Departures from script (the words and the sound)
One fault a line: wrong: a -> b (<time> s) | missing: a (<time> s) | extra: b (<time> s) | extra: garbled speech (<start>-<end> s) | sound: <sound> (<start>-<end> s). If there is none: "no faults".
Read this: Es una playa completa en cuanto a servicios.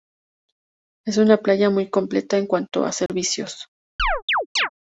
extra: muy (1.7 s)
sound: dropout (3.1-3.1 s)
sound: chirp (4.0-4.7 s)